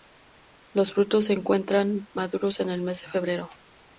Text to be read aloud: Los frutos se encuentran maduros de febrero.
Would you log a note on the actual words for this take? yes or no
yes